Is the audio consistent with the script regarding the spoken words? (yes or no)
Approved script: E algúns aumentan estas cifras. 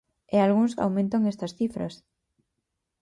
yes